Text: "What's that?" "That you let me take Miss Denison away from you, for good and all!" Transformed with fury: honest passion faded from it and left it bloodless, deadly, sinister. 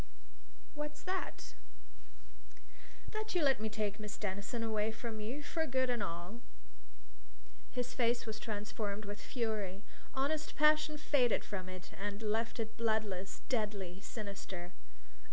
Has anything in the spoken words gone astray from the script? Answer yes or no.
yes